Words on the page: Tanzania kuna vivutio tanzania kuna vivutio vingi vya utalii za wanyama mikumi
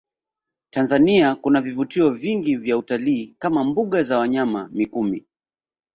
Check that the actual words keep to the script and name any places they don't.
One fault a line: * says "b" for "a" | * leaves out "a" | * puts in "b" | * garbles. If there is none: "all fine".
* leaves out "tanzania kuna vivutio"
* puts in "kama mbuga"